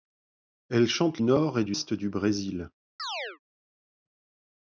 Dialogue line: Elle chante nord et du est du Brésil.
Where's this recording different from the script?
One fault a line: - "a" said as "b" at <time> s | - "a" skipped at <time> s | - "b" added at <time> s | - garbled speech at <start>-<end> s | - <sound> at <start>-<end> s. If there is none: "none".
- chirp at 3.0-3.4 s